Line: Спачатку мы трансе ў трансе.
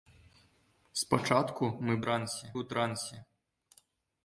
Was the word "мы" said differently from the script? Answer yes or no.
no